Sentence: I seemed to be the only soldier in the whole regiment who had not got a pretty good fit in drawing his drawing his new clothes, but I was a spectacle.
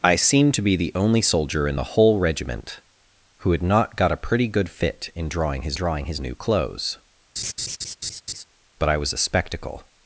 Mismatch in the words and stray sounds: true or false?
true